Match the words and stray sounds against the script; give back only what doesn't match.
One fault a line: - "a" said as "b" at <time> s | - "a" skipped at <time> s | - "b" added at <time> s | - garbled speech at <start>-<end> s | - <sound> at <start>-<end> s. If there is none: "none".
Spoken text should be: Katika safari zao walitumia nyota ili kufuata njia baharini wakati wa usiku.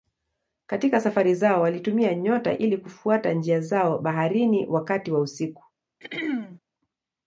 - "zao" added at 3.6 s
- throat clearing at 6.0-6.6 s